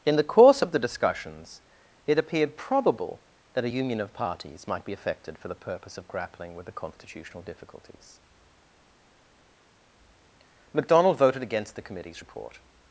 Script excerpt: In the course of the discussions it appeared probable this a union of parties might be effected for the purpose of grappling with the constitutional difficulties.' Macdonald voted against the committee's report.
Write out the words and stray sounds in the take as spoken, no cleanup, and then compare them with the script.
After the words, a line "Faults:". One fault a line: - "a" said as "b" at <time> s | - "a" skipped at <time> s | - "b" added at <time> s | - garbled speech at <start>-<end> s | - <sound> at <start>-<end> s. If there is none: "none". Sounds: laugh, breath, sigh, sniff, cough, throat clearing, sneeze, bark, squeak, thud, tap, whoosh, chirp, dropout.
In the course of the discussions it appeared probable that a union of parties might be effected for the purpose of grappling with the constitutional difficulties.' Macdonald voted against the committee's report.
Faults:
- "this" said as "that" at 3.5 s